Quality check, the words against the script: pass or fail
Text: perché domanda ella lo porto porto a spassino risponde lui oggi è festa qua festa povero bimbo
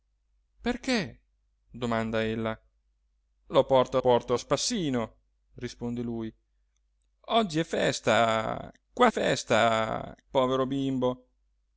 pass